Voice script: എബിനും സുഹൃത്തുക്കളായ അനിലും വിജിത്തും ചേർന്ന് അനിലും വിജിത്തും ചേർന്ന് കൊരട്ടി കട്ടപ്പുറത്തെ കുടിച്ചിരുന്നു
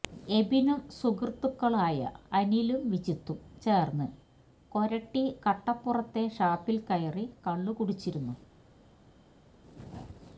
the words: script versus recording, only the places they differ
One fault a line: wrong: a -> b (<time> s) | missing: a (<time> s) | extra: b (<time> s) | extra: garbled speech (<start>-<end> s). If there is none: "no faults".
wrong: അനിലും വിജിത്തും ചേർന്ന് കൊരട്ടി കട്ടപ്പുറത്തെ -> കൊരട്ടി കട്ടപ്പുറത്തെ ഷാപ്പിൽ കയറി കള്ളു (4.7 s)